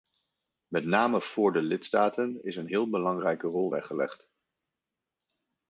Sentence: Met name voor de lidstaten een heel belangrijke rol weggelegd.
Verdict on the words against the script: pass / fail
fail